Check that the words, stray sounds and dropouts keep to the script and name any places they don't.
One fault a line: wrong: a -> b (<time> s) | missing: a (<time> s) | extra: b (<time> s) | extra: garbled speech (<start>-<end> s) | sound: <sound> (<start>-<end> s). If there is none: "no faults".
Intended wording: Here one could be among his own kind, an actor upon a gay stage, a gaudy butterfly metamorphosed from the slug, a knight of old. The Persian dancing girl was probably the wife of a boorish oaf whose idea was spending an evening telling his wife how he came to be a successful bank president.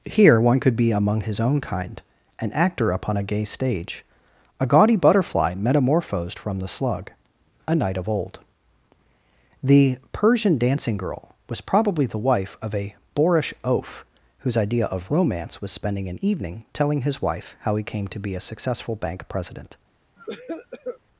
extra: of romance (14.9 s)
sound: cough (20.2-21.0 s)